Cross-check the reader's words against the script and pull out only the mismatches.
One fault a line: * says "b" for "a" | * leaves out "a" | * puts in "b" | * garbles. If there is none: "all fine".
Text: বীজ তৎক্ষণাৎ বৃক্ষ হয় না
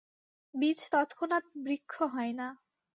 all fine